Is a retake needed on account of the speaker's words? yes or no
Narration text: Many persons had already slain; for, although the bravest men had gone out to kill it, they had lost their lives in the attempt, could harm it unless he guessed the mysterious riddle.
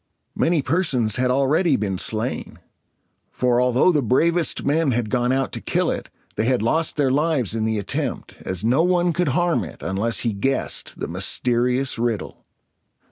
yes